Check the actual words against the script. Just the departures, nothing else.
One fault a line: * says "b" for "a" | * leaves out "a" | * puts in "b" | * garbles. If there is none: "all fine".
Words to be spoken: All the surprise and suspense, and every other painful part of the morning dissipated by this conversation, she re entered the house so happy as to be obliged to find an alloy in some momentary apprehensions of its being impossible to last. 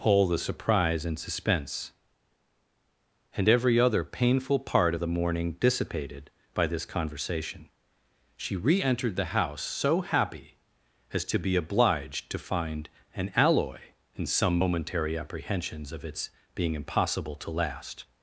all fine